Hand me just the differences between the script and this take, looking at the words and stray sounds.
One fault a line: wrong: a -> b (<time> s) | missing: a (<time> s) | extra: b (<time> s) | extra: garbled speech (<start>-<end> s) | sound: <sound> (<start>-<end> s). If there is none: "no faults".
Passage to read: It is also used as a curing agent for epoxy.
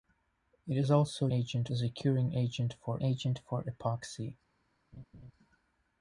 wrong: used -> agent (1.3 s)
extra: agent for (3.0 s)
sound: laugh (4.9-5.3 s)